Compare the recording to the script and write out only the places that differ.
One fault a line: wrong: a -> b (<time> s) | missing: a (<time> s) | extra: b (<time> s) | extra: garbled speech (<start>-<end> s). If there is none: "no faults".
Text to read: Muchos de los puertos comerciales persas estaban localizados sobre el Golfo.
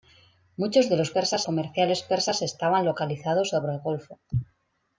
wrong: puertos -> persas (1.1 s)